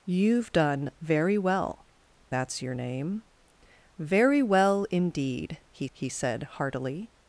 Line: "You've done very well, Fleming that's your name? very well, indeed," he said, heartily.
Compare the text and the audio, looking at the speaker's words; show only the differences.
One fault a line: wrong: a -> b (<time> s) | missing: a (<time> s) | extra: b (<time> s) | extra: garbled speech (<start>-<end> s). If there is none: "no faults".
missing: Fleming (1.9 s)
extra: he (5.9 s)